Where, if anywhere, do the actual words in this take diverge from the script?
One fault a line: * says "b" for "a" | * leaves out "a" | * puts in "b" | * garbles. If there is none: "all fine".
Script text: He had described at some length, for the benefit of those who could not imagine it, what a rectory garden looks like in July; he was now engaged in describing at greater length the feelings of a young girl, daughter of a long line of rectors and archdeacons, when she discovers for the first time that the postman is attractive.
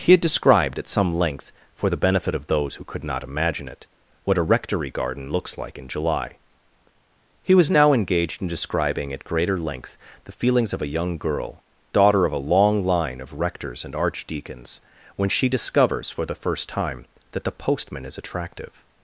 all fine